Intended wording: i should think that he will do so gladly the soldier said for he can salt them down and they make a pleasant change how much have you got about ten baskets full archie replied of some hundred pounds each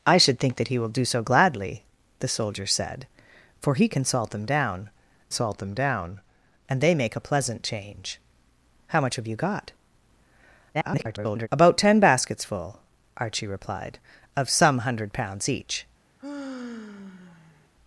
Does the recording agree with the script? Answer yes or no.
no